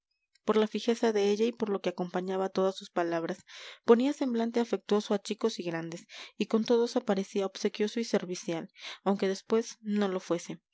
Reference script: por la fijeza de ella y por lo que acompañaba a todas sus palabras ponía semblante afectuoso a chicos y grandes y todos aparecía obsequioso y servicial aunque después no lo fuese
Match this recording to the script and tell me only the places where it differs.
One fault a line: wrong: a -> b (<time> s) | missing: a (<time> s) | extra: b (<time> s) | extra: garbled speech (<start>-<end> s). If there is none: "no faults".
extra: con (6.5 s)